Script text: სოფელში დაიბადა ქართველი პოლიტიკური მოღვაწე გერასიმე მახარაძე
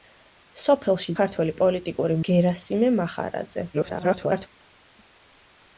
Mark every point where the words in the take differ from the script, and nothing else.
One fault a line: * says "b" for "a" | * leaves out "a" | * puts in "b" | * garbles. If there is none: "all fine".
* leaves out "დაიბადა"
* leaves out "მოღვაწე"
* garbles